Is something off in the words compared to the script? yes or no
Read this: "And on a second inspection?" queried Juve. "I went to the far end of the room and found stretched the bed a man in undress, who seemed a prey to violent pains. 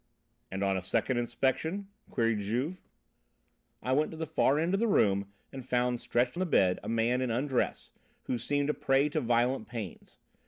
no